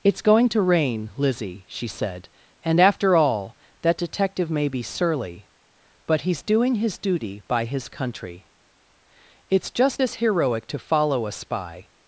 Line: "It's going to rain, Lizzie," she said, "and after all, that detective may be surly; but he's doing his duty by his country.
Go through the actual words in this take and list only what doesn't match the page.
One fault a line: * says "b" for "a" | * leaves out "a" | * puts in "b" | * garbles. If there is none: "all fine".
* puts in "It's just as heroic to follow a spy"